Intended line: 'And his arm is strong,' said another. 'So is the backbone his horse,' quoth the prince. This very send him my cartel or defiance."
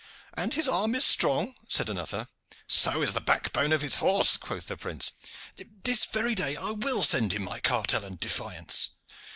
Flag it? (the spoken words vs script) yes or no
yes